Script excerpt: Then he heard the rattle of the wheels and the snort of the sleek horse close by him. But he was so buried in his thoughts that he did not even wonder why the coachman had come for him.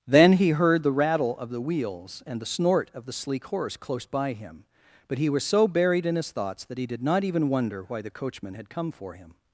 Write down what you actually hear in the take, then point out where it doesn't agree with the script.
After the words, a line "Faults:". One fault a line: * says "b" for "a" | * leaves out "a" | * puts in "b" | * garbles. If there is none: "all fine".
Then he heard the rattle of the wheels and the snort of the sleek horse close by him. But he was so buried in his thoughts that he did not even wonder why the coachman had come for him.
Faults:
all fine